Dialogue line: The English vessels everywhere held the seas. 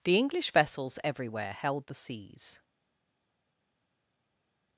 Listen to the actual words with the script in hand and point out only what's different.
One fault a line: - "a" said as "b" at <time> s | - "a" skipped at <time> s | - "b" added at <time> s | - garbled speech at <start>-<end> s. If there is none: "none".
none